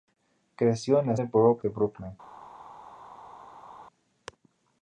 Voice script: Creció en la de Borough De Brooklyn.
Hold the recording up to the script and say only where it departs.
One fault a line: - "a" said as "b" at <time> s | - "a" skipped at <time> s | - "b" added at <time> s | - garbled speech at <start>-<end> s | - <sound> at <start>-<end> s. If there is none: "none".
none